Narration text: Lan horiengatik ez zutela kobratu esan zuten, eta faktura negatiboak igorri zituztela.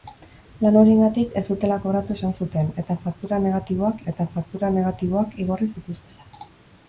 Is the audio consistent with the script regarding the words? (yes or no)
no